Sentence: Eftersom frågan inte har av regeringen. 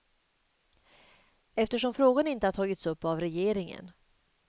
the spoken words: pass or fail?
fail